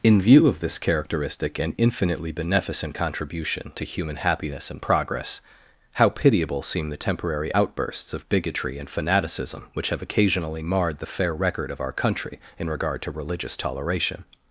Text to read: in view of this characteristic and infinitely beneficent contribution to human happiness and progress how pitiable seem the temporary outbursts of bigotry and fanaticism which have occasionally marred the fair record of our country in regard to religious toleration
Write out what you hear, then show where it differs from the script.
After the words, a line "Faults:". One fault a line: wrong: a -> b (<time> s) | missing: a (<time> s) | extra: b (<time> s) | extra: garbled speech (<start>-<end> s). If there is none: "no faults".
in view of this characteristic and infinitely beneficent contribution to human happiness and progress how pitiable seem the temporary outbursts of bigotry and fanaticism which have occasionally marred the fair record of our country in regard to religious toleration
Faults:
no faults